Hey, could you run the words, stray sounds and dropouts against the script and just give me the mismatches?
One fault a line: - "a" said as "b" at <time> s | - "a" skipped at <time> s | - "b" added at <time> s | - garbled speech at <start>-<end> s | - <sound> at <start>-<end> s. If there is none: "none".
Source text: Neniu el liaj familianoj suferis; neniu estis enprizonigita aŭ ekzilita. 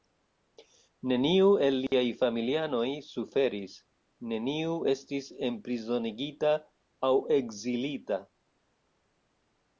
- dropout at 1.9-1.9 s